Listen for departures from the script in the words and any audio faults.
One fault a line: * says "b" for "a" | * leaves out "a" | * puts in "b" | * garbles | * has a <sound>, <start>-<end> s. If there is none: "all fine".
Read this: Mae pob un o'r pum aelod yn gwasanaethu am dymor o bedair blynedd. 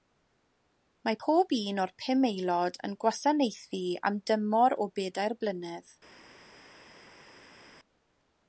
all fine